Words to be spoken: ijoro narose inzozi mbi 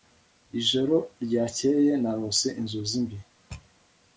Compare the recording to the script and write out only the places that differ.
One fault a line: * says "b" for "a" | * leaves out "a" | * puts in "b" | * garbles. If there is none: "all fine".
* puts in "ryakeye"